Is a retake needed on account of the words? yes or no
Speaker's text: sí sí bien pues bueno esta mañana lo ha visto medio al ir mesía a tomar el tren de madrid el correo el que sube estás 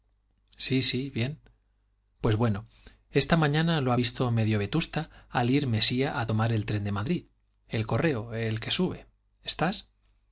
yes